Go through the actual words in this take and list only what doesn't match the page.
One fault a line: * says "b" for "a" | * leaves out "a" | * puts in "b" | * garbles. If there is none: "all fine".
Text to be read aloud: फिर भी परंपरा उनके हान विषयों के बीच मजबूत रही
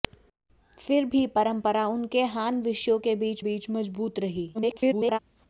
* puts in "बीच"
* garbles